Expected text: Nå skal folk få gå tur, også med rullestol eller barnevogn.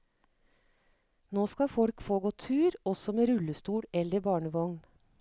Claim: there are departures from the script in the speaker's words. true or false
false